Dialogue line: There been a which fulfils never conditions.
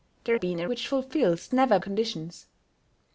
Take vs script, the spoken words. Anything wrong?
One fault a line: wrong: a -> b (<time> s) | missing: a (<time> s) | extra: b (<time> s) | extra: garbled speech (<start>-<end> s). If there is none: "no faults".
no faults